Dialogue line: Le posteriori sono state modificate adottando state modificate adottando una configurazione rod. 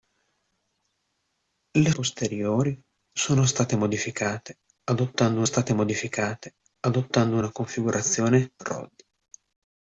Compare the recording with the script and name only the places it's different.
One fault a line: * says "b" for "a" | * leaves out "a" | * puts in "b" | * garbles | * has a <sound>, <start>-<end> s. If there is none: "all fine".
all fine